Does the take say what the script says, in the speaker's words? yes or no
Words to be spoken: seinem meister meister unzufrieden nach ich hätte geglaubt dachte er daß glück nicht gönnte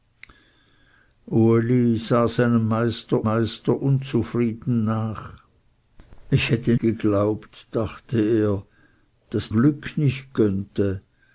yes